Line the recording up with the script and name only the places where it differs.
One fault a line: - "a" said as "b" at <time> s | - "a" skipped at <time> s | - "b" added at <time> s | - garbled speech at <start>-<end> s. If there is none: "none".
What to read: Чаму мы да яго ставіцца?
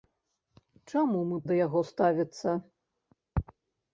none